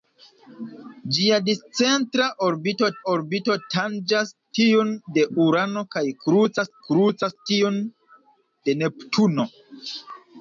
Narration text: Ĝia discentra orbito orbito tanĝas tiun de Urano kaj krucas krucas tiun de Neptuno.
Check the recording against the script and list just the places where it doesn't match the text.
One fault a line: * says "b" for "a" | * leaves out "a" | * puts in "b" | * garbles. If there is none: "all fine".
all fine